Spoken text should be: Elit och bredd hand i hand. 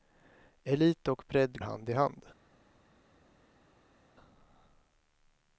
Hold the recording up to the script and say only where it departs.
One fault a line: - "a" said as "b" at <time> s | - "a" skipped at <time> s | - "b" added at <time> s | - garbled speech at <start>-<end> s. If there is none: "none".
none